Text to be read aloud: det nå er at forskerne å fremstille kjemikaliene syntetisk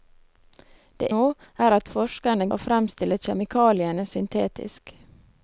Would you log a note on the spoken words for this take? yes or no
no